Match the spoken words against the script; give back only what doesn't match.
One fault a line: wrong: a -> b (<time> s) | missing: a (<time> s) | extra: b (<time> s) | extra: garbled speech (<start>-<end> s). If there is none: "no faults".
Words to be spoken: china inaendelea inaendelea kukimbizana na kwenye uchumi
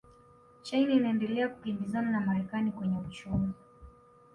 missing: inaendelea (1.5 s)
extra: marekani (2.2 s)